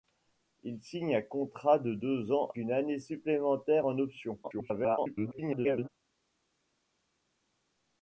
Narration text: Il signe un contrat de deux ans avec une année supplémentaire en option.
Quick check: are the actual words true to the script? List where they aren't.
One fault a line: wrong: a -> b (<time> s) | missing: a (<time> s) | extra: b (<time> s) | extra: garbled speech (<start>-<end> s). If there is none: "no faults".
missing: avec (2.5 s)
extra: garbled speech (4.4-5.9 s)